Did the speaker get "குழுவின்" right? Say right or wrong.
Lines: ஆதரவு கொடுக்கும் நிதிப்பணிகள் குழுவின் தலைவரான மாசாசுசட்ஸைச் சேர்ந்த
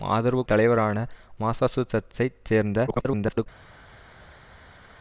wrong